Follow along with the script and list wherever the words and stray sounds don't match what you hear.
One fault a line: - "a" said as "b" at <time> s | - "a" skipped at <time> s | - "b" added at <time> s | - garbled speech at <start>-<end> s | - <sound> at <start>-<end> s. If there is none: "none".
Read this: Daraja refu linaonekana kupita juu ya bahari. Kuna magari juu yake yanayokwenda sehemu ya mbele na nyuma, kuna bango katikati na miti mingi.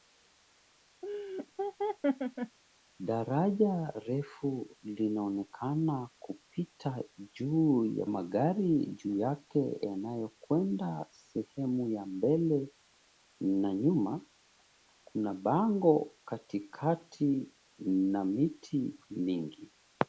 - laugh at 1.0-2.6 s
- "bahari Kuna" skipped at 8.1 s